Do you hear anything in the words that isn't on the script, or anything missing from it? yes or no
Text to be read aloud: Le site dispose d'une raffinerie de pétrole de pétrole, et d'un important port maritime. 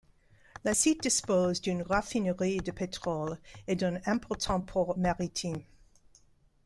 yes